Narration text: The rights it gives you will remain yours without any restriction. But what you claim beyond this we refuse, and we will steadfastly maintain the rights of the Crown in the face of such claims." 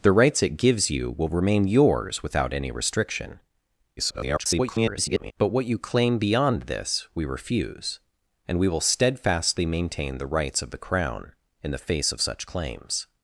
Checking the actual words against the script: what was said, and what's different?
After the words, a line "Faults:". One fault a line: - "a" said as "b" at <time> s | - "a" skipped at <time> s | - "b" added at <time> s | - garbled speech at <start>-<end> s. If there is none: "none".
The rights it gives you will remain yours without any restriction. [garbled] But what you claim beyond this we refuse, and we will steadfastly maintain the rights of the Crown in the face of such claims."
Faults:
- garbled speech at 4.0-5.3 s